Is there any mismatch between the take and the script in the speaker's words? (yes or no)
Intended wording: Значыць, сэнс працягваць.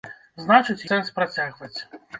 no